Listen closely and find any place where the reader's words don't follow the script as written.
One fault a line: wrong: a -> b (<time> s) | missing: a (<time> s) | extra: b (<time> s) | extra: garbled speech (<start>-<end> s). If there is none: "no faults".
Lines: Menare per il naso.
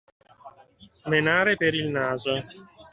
no faults